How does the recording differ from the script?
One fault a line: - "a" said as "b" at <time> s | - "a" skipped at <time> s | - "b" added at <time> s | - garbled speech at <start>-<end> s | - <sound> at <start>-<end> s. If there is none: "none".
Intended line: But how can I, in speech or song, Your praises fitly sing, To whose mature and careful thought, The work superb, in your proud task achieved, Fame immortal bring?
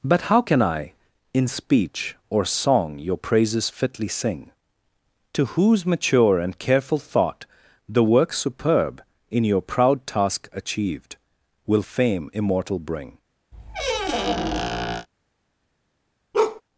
- "Will" added at 11.7 s
- squeak at 13.5-15.1 s
- bark at 16.3-16.6 s